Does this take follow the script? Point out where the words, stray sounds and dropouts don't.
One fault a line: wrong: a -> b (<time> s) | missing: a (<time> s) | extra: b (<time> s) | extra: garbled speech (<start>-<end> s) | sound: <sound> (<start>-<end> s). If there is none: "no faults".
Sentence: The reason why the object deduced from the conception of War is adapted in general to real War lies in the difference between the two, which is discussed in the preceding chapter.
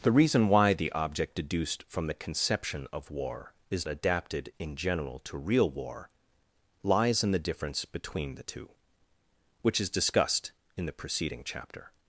no faults